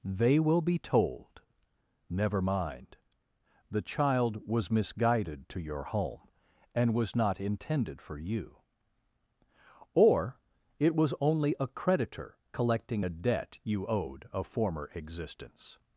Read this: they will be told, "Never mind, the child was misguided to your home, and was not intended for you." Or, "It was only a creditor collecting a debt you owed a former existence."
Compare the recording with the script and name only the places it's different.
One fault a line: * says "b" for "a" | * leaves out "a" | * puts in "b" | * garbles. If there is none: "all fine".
all fine